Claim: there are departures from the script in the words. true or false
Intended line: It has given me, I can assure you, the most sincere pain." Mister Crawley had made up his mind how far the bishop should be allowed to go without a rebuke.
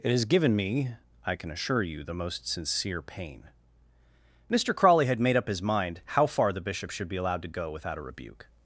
false